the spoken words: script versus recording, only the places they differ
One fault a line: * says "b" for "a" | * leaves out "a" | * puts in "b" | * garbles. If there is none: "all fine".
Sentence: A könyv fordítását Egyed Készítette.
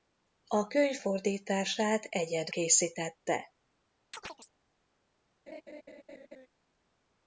all fine